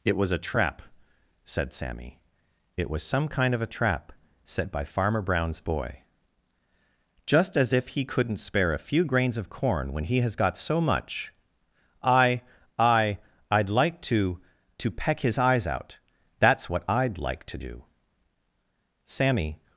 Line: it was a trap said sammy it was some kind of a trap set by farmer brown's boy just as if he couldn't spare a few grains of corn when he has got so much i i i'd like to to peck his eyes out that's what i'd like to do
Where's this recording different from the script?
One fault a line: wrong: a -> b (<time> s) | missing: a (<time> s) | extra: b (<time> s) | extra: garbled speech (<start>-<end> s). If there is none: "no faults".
extra: sammy (19.0 s)